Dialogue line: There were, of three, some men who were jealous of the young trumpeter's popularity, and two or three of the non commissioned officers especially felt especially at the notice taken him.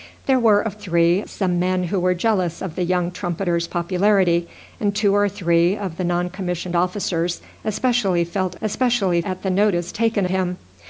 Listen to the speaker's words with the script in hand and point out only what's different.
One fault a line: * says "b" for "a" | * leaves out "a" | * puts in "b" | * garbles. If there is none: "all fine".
all fine